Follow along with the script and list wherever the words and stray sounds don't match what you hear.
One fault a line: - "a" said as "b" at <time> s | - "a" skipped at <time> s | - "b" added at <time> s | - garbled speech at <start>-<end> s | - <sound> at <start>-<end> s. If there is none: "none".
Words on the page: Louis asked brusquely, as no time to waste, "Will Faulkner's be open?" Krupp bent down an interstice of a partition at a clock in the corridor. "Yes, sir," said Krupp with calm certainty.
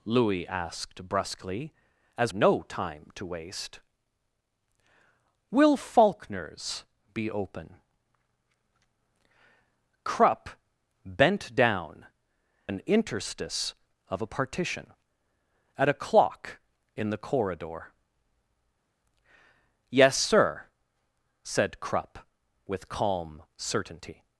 none